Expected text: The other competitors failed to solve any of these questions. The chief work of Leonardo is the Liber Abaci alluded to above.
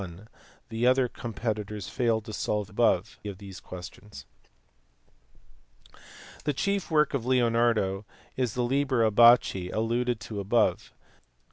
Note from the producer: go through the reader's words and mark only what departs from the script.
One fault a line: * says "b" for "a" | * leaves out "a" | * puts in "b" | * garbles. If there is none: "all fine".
* says "above" for "any"